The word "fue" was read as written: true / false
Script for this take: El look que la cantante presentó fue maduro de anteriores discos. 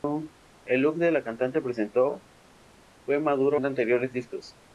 true